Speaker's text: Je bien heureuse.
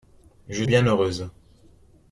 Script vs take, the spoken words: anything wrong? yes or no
no